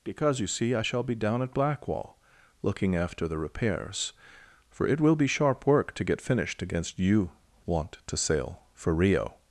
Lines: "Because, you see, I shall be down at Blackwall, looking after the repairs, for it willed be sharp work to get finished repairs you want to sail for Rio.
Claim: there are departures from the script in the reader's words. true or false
true